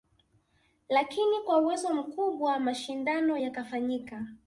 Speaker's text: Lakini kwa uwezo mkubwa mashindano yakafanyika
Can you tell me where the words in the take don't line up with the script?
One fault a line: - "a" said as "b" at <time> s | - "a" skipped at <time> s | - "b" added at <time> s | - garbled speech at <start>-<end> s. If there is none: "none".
none